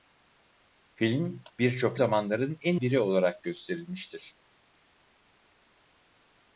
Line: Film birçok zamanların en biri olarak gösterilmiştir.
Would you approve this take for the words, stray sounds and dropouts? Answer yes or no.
yes